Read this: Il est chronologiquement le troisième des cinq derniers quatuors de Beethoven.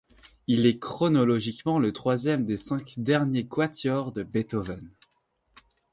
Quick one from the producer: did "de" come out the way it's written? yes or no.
yes